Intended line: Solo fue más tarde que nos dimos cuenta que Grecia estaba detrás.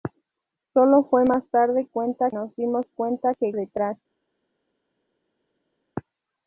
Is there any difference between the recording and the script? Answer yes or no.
yes